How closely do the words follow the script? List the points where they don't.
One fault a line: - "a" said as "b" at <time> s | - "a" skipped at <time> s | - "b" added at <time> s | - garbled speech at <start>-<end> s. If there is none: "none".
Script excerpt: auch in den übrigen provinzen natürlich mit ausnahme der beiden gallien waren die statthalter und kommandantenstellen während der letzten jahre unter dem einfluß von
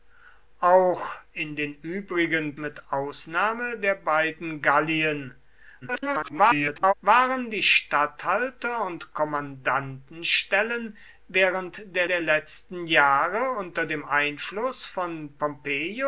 - "provinzen natürlich" skipped at 2.5 s
- garbled speech at 5.8-6.9 s
- "der" added at 12.1 s